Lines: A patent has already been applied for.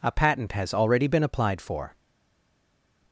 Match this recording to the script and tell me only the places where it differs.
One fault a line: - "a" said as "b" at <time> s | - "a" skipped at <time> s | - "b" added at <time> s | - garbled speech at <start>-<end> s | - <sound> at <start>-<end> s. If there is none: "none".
none